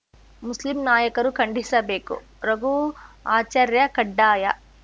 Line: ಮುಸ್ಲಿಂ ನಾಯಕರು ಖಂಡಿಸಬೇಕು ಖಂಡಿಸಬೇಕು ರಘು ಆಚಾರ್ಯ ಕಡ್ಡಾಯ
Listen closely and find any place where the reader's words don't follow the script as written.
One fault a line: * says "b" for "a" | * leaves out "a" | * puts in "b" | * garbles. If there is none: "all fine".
* leaves out "ಖಂಡಿಸಬೇಕು"